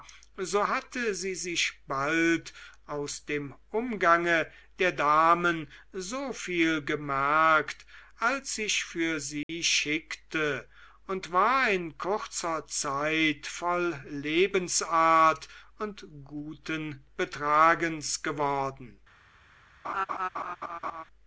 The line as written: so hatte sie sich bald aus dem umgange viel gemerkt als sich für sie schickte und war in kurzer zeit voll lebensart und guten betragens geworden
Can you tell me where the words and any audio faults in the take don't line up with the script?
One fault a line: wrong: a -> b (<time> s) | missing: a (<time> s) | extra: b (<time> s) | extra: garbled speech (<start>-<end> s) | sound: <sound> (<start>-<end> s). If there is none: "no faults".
extra: der damen so (4.8 s)
sound: dropout (9.4-9.5 s)
sound: laugh (19.8-21.0 s)